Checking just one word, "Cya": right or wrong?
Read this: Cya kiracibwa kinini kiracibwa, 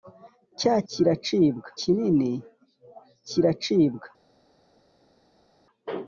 right